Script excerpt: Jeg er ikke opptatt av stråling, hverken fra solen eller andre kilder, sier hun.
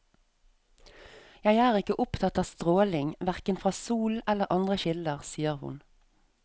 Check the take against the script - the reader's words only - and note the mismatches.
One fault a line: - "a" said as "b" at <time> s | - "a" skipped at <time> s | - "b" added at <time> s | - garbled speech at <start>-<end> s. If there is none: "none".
none